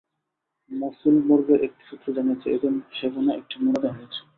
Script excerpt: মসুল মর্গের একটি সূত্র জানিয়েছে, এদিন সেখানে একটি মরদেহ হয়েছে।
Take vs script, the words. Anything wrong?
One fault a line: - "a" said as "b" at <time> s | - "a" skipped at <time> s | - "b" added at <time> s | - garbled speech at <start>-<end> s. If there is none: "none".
none